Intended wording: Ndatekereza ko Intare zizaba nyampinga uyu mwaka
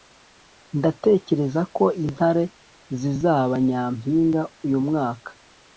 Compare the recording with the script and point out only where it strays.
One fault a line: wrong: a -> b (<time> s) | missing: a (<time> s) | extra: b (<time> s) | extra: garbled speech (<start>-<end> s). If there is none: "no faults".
no faults